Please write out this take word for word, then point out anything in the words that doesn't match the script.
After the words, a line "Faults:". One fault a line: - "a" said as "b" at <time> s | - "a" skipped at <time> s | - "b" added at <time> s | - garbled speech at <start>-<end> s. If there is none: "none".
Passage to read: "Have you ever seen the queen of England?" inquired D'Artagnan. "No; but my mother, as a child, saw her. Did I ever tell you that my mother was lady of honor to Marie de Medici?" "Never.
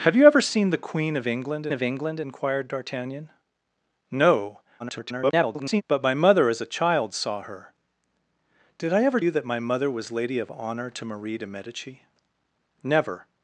"Have you ever seen the queen of England of England?" inquired D'Artagnan. "No; [garbled] but my mother, as a child, saw her. Did I ever you that my mother was lady of honor to Marie de Medici?" "Never.
Faults:
- "of England" added at 1.7 s
- garbled speech at 4.8-5.8 s
- "tell" skipped at 9.2 s